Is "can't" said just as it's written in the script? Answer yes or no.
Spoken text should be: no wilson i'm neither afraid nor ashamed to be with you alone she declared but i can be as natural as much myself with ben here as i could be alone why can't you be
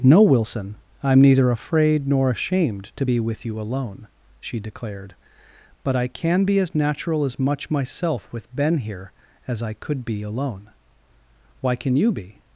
no